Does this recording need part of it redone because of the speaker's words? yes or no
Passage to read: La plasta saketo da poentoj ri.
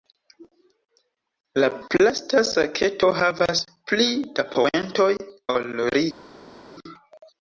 yes